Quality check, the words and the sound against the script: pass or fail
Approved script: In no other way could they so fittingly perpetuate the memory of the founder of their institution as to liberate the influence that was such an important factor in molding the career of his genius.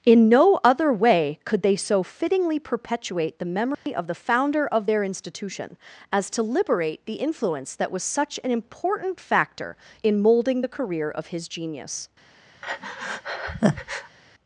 fail